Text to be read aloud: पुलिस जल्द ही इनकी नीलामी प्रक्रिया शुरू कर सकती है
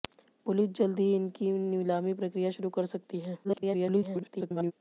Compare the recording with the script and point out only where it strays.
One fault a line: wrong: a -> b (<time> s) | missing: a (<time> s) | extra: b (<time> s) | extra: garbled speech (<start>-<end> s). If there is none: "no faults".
extra: garbled speech (3.4-4.7 s)